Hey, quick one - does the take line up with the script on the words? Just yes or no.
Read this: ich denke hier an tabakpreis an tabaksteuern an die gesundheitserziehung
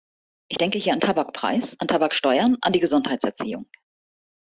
yes